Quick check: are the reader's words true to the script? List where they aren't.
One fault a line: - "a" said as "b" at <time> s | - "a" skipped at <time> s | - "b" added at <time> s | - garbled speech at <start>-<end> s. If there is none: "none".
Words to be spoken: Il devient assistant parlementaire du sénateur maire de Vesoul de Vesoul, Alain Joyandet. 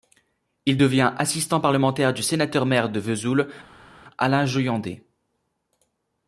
- "de Vesoul" skipped at 3.5 s